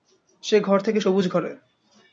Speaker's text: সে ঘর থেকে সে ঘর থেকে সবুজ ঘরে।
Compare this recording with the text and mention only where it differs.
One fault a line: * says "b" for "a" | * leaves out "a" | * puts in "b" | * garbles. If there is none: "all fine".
* leaves out "সে ঘর থেকে"